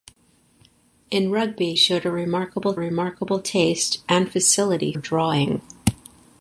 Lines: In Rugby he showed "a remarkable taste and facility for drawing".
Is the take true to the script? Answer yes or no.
no